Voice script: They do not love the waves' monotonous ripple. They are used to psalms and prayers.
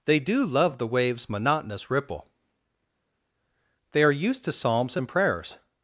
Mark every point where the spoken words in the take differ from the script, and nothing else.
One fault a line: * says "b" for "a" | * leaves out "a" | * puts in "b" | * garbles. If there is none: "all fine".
* leaves out "not"